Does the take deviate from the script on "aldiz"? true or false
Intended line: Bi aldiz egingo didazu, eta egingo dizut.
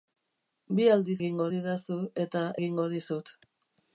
false